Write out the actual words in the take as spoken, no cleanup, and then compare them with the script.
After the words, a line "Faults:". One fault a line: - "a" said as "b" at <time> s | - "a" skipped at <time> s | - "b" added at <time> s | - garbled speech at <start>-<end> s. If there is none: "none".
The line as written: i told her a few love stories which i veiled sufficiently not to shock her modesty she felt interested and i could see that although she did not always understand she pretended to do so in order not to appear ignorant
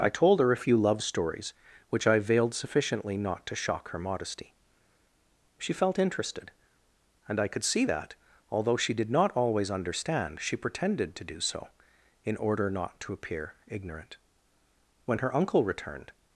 i told her a few love stories which i veiled sufficiently not to shock her modesty she felt interested and i could see that although she did not always understand she pretended to do so in order not to appear ignorant when her uncle returned
Faults:
- "when her uncle returned" added at 15.1 s